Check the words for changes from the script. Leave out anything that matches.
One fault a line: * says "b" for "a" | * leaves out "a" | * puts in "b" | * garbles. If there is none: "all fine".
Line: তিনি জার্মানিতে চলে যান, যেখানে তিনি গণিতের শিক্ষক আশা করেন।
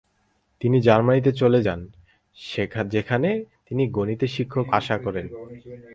all fine